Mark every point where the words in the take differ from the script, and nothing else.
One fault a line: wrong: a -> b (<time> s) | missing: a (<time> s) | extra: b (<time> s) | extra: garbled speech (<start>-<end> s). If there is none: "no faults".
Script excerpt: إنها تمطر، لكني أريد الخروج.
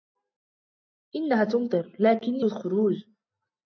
missing: أريد (2.5 s)